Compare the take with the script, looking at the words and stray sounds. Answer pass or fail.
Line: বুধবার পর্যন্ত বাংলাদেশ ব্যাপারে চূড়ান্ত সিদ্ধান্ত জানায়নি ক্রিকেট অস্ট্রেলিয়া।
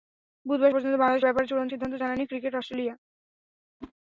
fail